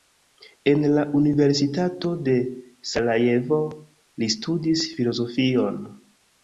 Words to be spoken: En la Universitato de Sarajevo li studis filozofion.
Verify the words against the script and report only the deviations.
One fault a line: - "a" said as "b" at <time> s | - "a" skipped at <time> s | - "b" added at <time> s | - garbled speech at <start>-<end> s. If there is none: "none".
none